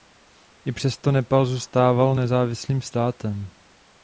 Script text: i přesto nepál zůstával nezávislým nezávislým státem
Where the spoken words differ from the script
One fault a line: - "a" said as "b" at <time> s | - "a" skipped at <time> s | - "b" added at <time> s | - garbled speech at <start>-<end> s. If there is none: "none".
- "nezávislým" skipped at 2.8 s